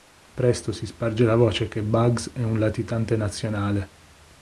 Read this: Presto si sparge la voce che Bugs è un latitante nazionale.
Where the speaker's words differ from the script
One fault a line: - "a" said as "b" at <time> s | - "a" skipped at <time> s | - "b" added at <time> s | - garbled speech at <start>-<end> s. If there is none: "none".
none